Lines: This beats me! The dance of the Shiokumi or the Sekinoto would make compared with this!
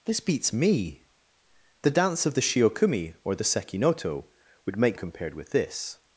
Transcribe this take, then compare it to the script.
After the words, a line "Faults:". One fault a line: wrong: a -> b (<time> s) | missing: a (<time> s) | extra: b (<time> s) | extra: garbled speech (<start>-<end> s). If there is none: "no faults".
This beats me! The dance of the Shiokumi or the Sekinoto would make compared with this!
Faults:
no faults